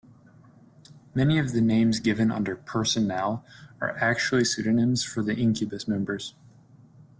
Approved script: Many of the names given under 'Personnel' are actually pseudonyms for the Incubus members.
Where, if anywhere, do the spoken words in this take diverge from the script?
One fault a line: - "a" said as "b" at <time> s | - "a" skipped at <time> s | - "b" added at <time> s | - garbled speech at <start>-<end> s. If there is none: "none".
none